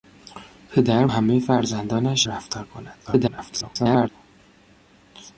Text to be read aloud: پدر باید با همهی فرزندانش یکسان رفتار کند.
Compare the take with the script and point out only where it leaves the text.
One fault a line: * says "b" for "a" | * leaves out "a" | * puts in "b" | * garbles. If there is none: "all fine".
* leaves out "باید با"
* leaves out "یکسان"
* garbles